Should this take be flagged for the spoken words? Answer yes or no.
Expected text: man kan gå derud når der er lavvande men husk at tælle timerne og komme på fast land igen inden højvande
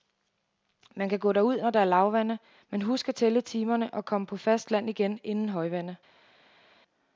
no